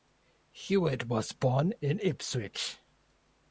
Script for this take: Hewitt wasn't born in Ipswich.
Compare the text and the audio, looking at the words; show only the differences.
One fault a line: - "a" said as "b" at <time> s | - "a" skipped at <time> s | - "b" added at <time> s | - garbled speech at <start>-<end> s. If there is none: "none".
- "wasn't" said as "was" at 1.1 s